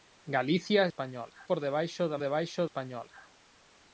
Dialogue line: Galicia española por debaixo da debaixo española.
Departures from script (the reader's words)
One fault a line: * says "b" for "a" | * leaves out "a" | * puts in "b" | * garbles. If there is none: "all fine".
all fine